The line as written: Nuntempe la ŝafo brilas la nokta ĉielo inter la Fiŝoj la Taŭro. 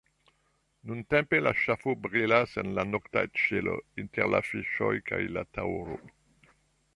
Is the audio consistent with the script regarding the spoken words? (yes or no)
no